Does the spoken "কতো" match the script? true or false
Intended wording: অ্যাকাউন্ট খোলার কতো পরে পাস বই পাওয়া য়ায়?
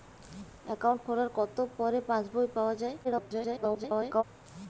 true